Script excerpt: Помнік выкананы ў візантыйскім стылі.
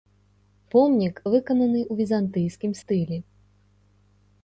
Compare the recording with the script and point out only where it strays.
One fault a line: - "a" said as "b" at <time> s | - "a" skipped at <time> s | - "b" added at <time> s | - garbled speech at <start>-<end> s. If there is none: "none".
none